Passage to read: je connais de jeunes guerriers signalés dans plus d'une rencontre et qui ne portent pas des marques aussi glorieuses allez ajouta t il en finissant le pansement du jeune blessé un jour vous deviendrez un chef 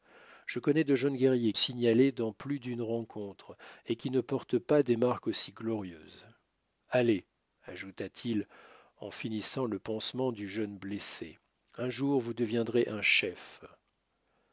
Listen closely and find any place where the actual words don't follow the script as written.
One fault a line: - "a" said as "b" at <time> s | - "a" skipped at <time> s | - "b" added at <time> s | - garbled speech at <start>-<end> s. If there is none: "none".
none